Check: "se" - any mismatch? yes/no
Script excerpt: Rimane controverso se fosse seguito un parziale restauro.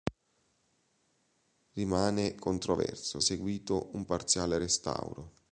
yes